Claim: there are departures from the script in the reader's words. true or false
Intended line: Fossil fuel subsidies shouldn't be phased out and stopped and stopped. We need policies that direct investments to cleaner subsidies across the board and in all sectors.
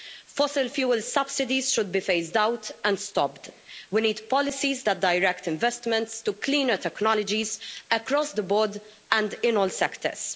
true